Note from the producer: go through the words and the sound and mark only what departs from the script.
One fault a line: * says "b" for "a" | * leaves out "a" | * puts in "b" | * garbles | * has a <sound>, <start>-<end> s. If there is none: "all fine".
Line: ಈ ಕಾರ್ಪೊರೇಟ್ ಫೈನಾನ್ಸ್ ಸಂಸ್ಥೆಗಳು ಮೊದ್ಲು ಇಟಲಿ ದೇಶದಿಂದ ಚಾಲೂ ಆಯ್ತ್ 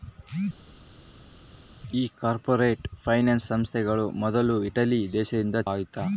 * leaves out "ಚಾಲೂ"